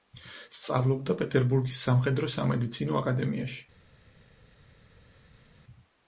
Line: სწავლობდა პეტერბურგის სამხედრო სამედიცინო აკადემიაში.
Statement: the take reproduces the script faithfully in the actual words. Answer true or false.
true